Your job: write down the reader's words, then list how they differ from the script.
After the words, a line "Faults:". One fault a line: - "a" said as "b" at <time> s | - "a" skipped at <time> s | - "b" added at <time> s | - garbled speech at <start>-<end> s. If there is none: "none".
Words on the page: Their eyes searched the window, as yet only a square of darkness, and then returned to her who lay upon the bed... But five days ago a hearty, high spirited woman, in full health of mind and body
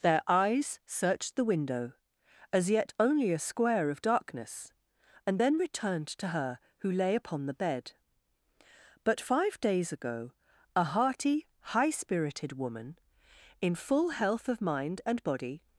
Their eyes searched the window, as yet only a square of darkness, and then returned to her who lay upon the bed... But five days ago a hearty, high spirited woman, in full health of mind and body
Faults:
none